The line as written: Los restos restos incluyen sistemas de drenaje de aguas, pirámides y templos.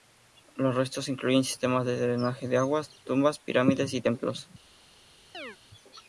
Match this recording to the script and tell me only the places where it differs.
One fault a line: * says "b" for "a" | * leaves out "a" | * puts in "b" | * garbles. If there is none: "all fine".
* leaves out "restos"
* puts in "tumbas"